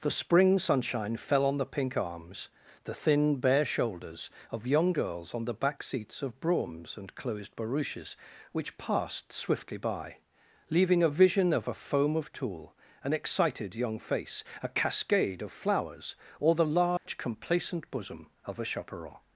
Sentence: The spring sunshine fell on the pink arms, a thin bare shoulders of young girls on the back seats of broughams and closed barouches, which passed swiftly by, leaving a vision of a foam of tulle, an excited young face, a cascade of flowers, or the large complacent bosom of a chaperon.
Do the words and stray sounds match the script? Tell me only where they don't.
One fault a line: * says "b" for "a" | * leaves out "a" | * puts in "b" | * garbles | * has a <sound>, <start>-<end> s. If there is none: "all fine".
* says "the" for "a"
* has a dropout, 17.0-17.1 s